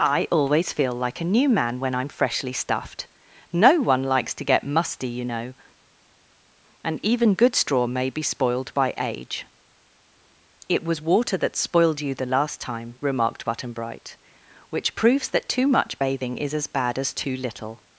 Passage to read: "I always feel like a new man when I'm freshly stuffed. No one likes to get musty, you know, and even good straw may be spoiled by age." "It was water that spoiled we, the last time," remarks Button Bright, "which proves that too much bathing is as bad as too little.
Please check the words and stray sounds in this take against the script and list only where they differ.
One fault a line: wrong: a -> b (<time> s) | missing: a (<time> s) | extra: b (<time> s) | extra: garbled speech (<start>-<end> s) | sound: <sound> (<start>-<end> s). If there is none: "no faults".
wrong: we -> you (12.0 s)
wrong: remarks -> remarked (13.0 s)